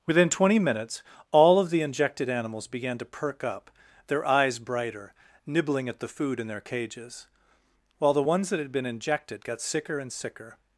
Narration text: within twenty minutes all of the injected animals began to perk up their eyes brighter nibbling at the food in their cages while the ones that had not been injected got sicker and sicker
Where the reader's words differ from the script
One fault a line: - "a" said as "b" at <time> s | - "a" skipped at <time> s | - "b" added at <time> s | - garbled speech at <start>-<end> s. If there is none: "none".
- "not" skipped at 8.7 s